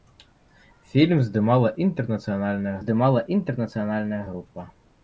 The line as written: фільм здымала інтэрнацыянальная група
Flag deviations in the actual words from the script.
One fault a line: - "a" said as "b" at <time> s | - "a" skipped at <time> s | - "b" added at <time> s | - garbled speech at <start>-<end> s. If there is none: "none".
- "здымала інтэрнацыянальная" added at 2.8 s